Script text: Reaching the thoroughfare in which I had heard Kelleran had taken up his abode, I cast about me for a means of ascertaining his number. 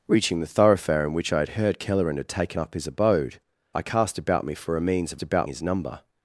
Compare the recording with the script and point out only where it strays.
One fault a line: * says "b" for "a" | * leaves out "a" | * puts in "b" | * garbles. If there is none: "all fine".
* says "about" for "ascertaining"